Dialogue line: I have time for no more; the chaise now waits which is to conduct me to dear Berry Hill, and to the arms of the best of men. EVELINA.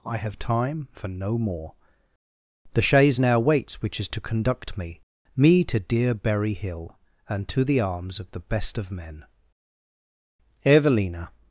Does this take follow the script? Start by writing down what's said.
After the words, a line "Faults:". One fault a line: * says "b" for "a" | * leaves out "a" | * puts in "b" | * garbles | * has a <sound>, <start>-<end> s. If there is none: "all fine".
I have time for no more; the chaise now waits which is to conduct me me to dear Berry Hill, and to the arms of the best of men. EVELINA.
Faults:
* puts in "me"